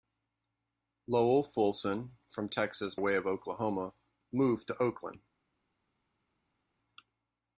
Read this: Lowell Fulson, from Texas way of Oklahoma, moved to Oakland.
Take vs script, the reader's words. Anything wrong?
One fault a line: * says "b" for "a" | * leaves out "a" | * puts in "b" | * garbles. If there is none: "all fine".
all fine